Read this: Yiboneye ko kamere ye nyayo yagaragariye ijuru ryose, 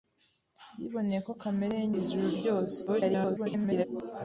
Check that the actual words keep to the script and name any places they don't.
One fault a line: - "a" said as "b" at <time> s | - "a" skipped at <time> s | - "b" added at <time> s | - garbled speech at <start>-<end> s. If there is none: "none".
- "nyayo yagaragariye" skipped at 1.9 s
- garbled speech at 2.9-3.9 s